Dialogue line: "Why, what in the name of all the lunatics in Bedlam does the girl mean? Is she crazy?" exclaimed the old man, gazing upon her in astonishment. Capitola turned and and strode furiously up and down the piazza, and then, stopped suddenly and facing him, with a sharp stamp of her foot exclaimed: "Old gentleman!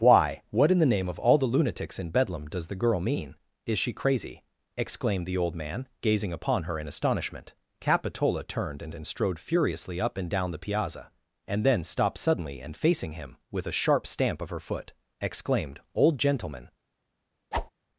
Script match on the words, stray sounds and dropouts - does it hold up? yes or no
no